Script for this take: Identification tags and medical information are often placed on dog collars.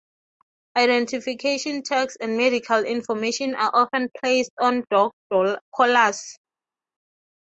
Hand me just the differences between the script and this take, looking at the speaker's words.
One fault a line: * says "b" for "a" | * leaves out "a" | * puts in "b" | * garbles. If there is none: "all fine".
all fine